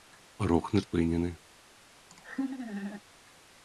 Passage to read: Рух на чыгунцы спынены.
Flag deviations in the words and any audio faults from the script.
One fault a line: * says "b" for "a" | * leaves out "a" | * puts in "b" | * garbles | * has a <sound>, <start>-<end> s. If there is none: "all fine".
* leaves out "чыгунцы"
* has a laugh, 2.1-3.0 s